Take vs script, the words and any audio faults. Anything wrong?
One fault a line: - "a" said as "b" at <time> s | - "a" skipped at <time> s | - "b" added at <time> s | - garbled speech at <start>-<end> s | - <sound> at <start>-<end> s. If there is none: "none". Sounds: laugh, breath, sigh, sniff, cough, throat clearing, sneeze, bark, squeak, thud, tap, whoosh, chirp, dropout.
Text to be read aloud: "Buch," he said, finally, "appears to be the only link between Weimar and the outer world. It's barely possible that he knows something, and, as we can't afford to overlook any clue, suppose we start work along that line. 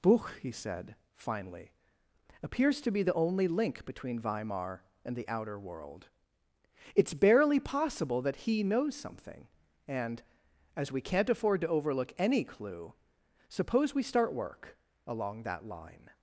none